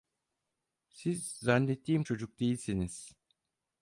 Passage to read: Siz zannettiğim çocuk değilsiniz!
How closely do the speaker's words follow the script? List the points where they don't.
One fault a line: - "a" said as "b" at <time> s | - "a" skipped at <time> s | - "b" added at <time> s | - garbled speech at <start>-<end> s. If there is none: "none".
none